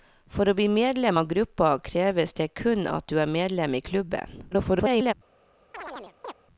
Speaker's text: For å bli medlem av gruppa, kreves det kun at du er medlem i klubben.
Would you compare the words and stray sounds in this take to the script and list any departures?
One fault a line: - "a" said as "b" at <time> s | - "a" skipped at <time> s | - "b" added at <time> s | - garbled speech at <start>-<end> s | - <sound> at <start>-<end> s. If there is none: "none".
- garbled speech at 4.5-5.1 s
- chirp at 5.7-6.3 s